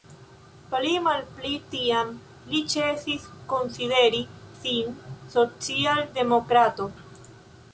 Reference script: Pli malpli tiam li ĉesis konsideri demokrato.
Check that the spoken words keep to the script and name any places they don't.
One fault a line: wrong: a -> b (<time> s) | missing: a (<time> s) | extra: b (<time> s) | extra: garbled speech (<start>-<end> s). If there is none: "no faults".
extra: sin social (4.6 s)